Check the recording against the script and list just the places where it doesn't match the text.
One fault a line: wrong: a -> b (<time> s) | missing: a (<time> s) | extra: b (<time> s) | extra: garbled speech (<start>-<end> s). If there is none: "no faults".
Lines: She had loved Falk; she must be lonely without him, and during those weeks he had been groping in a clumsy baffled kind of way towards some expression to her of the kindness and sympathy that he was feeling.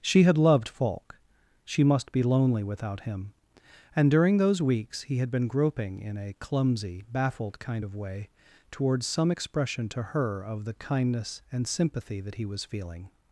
no faults